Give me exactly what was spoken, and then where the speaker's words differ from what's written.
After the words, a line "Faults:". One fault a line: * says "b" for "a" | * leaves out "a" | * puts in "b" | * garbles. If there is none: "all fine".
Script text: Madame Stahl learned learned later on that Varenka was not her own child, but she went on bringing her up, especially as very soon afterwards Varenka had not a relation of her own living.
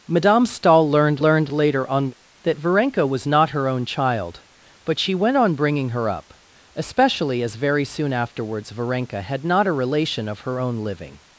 Madame Stahl learned learned later on that Varenka was not her own child, but she went on bringing her up, especially as very soon afterwards Varenka had not a relation of her own living.
Faults:
all fine